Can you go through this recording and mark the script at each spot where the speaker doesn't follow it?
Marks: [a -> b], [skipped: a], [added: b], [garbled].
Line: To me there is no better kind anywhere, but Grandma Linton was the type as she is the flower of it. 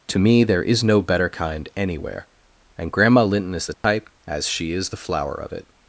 To me there is no better kind anywhere, [but -> and] Grandma Linton [was -> is] the type as she is the flower of it.